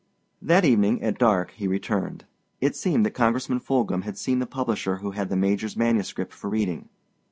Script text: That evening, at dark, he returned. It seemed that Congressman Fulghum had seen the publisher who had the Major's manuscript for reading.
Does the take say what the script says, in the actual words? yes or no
yes